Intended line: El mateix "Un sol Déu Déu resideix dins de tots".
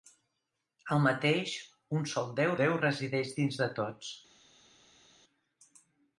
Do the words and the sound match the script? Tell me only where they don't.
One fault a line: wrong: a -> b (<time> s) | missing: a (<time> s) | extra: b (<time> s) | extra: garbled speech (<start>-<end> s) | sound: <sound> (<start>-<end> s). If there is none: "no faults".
no faults